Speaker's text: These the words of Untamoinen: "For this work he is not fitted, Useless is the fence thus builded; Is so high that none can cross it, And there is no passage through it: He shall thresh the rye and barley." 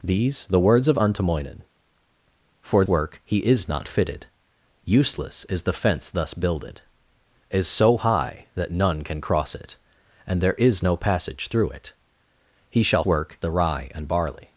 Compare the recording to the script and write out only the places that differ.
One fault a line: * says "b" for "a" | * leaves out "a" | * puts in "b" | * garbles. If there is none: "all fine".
* leaves out "this"
* says "work" for "thresh"